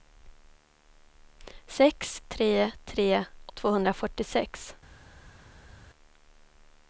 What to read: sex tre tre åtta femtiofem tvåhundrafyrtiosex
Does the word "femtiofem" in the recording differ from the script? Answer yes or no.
yes